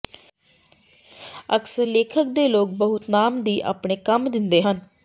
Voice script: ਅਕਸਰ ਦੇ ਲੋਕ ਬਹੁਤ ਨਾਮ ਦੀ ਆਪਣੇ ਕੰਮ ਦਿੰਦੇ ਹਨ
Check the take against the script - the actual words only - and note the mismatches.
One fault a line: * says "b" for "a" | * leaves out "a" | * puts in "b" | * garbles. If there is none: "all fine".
* puts in "ਲੇਖਕ"